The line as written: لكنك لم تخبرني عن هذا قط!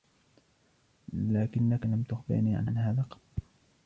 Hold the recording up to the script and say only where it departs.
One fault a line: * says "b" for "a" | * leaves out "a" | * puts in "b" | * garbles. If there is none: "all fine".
* puts in "عن"